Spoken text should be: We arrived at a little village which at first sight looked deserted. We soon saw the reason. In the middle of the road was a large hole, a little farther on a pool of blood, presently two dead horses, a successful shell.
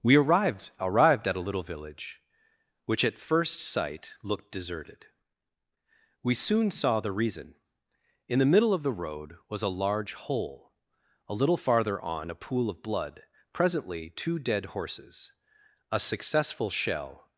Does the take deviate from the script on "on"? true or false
false